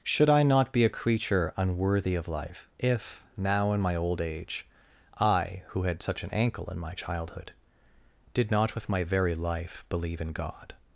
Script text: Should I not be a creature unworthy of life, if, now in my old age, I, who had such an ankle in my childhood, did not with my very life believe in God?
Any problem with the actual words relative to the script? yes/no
no